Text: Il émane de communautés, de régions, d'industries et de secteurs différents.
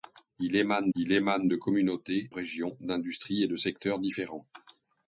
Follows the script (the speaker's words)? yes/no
no